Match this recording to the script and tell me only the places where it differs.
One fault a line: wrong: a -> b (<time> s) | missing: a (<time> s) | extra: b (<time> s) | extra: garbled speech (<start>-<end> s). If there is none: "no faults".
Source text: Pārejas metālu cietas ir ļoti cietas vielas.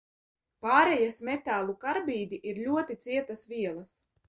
wrong: cietas -> karbīdi (1.9 s)